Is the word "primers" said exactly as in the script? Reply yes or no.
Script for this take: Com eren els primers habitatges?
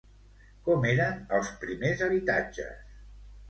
yes